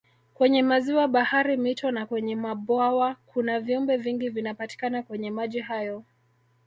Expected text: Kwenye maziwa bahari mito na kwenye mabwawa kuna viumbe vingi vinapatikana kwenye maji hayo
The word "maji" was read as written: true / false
true